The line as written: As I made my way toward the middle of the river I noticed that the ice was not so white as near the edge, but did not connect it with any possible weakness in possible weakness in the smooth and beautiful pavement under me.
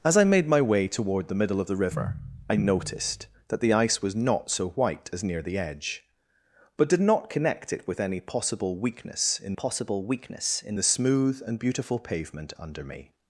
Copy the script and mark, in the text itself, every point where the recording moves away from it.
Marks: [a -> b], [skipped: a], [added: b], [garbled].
As I made my way toward the middle of the river I noticed that the ice was not so white as near the edge, but did not connect it with any possible weakness in possible weakness in the smooth and beautiful pavement under me.